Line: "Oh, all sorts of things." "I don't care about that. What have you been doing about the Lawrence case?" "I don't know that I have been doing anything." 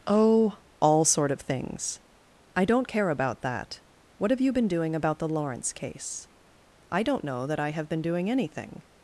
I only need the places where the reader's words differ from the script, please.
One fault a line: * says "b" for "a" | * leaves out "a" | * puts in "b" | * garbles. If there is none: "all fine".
* says "sort" for "sorts"